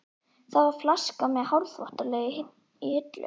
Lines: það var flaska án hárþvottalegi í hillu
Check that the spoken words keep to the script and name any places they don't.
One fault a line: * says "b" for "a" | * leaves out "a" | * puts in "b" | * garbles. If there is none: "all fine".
* says "með" for "án"